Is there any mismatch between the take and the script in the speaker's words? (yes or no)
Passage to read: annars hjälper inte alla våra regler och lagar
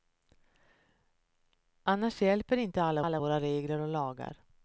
yes